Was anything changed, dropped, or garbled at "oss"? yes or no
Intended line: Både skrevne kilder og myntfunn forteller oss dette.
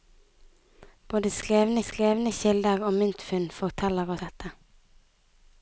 yes